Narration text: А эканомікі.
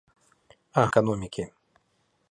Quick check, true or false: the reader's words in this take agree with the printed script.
true